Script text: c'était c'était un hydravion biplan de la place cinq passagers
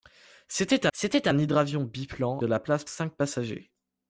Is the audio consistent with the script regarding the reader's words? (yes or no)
yes